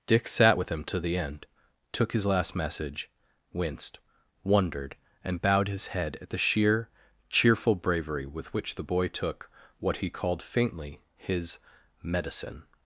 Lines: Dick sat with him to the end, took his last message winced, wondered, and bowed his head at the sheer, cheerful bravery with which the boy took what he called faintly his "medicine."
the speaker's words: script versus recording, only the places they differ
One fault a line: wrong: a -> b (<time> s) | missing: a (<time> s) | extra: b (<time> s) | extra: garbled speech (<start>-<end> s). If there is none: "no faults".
no faults